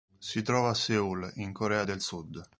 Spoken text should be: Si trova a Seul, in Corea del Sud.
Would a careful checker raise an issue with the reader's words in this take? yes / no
no